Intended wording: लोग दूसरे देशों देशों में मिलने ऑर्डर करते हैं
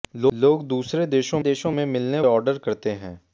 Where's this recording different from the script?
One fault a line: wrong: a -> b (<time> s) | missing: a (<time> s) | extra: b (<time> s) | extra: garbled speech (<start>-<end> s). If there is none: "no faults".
no faults